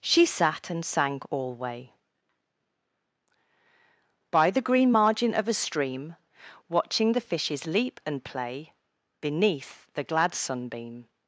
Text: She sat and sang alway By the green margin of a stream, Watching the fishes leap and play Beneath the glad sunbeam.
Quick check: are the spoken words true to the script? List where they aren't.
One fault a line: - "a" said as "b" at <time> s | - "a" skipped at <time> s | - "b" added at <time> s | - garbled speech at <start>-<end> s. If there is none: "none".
none